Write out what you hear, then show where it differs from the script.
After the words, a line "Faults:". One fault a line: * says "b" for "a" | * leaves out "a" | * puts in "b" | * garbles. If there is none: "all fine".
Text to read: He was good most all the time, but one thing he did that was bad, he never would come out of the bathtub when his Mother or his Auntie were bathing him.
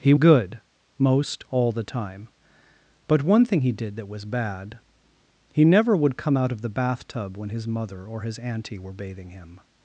He good most all the time, but one thing he did that was bad, he never would come out of the bathtub when his Mother or his Auntie were bathing him.
Faults:
* leaves out "was"